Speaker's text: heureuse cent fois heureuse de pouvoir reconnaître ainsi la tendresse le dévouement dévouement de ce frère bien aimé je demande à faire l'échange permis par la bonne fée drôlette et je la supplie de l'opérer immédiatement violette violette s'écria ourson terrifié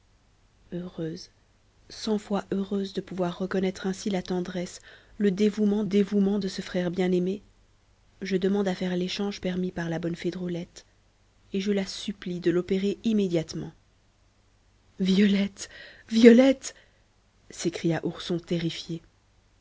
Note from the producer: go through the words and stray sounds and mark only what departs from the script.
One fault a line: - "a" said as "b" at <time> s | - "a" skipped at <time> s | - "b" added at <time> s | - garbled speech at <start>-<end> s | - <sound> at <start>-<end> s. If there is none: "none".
none